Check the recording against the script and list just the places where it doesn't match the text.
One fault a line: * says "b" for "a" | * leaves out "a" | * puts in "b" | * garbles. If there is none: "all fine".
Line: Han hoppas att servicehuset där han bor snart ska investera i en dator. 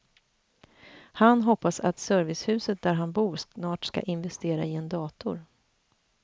all fine